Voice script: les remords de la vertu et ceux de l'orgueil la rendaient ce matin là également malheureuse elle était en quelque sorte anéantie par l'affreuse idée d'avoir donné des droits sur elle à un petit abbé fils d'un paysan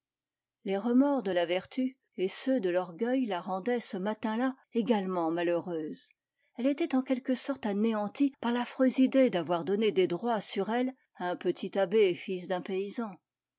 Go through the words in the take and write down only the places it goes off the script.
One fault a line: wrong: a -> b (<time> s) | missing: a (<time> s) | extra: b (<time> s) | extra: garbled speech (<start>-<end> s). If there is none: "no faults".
no faults